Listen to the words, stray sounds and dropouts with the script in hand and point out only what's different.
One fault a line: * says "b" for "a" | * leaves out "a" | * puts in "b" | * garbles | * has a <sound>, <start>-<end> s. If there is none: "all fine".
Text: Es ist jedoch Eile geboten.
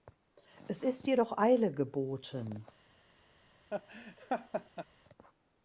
* has a laugh, 3.7-4.9 s